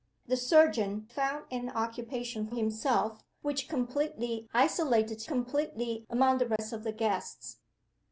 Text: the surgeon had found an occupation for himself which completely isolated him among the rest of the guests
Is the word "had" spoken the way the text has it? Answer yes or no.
no